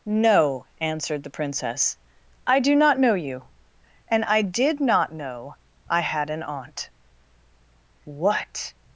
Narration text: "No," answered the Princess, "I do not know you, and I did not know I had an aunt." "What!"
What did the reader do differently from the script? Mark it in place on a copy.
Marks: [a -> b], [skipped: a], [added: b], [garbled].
"No," answered the Princess, "I do not know you, and I did not know I had an aunt." "What!"